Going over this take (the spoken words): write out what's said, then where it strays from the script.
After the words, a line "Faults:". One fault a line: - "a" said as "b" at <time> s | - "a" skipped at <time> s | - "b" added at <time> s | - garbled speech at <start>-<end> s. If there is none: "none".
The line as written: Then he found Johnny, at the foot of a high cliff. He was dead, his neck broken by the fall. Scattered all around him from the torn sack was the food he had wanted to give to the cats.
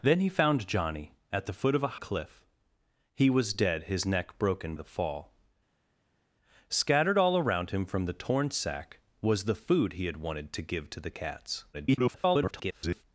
Then he found Johnny, at the foot of a cliff. He was dead, his neck broken the fall. Scattered all around him from the torn sack was the food he had wanted to give to the cats. [garbled]
Faults:
- "high" skipped at 2.0 s
- "by" skipped at 4.7 s
- garbled speech at 11.7-13.0 s